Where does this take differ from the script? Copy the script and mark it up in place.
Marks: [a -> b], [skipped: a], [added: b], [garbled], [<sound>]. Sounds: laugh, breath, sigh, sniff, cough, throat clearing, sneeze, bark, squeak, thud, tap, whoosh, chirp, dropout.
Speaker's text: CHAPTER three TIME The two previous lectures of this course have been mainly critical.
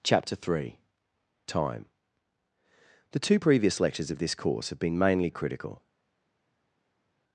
CHAPTER three TIME The two previous lectures of this course have been mainly critical.